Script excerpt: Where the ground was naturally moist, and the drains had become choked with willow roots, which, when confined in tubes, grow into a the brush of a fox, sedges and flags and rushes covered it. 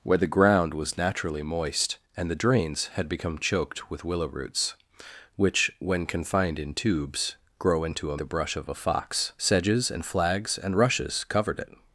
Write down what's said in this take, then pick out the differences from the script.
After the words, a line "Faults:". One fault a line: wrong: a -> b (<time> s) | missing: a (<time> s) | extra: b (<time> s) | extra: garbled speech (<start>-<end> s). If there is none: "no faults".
Where the ground was naturally moist, and the drains had become choked with willow roots, which, when confined in tubes, grow into a the brush of a fox, sedges and flags and rushes covered it.
Faults:
no faults